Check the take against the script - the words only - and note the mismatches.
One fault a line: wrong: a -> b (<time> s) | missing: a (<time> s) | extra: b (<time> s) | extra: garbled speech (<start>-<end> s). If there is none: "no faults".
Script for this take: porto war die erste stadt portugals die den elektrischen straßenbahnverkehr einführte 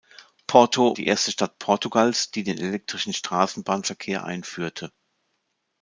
missing: war (1.0 s)